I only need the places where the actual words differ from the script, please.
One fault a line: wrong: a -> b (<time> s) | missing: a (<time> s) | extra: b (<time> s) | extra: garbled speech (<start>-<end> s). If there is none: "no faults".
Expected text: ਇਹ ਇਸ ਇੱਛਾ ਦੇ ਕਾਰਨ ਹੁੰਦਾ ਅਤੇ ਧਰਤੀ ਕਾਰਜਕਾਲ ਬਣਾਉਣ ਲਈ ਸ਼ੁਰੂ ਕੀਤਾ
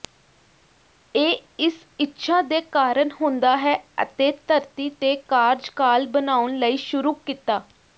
extra: ਹੈ (3.6 s)
extra: ਤੇ (4.9 s)